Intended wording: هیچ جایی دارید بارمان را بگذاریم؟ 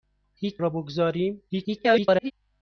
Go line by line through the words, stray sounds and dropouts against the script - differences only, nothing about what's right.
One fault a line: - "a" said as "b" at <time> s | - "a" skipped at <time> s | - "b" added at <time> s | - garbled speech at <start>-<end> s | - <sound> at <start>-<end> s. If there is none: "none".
- "جایی دارید بارمان" skipped at 0.6 s
- garbled speech at 1.5-2.3 s